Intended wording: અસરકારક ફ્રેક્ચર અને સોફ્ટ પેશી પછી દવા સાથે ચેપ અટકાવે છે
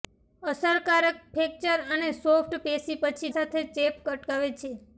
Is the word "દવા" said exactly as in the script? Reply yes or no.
no